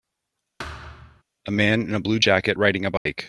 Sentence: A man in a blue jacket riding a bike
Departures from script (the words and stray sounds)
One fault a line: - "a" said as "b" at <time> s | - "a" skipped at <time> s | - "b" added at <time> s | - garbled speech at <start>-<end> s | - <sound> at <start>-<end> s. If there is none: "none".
- thud at 0.6-1.2 s
- dropout at 3.0-3.1 s